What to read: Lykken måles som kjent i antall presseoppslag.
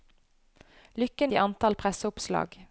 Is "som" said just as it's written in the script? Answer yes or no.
no